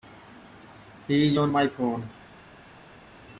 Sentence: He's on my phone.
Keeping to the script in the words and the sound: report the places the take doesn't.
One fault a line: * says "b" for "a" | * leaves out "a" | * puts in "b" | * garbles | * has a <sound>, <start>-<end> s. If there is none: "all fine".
all fine